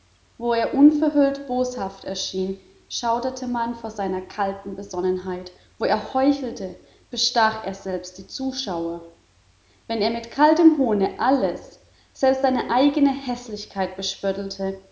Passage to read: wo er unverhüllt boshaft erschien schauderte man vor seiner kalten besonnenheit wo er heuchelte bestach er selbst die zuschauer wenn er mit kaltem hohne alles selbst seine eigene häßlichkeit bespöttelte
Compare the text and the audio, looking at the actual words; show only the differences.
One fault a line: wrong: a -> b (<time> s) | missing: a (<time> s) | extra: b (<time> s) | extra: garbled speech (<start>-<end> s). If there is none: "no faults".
no faults